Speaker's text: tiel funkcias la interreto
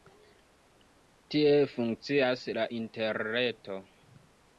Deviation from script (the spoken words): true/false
false